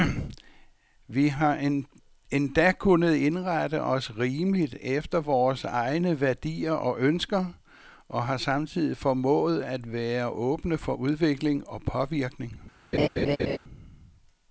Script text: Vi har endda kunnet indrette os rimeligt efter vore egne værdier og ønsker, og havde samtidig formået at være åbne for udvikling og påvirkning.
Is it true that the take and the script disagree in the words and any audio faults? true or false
true